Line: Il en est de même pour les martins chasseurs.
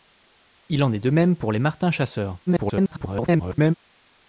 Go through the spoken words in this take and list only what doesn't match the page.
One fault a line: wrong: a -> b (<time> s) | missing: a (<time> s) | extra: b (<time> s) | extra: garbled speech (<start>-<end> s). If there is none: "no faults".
extra: garbled speech (2.5-3.7 s)